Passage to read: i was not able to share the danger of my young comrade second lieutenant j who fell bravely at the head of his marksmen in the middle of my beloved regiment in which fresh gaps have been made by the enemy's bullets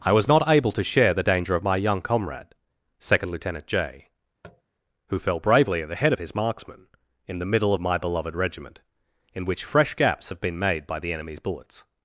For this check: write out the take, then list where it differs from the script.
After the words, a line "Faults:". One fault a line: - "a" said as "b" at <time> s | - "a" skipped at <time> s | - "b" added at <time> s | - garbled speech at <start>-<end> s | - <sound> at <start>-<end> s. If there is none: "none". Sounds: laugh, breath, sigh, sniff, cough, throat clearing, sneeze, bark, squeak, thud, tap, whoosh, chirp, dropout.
i was not able to share the danger of my young comrade second lieutenant j who fell bravely at the head of his marksmen in the middle of my beloved regiment in which fresh gaps have been made by the enemy's bullets
Faults:
- tap at 4.4-4.6 s